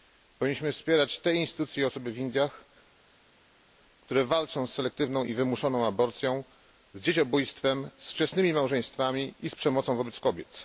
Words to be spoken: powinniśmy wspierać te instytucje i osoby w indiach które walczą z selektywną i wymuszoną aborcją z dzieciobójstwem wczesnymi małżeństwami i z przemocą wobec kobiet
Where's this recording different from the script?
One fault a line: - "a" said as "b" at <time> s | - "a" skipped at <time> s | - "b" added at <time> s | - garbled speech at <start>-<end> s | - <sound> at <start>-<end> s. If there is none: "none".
- "z" added at 8.0 s